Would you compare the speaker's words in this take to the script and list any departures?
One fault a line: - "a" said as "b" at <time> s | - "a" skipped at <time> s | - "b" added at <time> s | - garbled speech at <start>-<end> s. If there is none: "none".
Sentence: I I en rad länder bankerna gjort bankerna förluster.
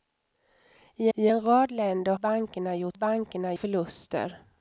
none